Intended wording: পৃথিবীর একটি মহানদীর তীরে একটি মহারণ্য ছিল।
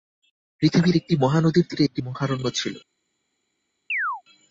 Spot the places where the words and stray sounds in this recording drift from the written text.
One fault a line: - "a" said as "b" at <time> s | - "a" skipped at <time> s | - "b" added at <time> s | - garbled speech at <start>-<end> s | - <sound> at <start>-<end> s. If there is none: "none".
- chirp at 3.9-4.2 s